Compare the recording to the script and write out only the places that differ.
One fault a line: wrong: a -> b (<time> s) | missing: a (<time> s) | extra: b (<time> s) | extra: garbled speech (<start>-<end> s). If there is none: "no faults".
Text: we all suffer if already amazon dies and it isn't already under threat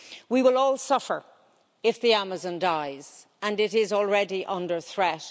extra: will (0.4 s)
wrong: already -> the (2.0 s)
wrong: isn't -> is (3.7 s)